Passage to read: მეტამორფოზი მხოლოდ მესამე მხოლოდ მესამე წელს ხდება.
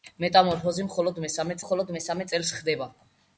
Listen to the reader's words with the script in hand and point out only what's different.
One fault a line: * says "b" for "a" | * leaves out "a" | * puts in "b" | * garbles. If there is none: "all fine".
all fine